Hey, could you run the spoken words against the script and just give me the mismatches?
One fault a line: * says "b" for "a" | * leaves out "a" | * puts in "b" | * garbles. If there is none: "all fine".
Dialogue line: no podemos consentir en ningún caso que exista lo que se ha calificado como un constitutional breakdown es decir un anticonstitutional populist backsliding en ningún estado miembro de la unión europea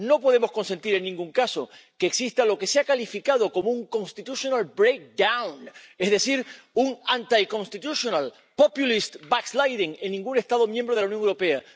all fine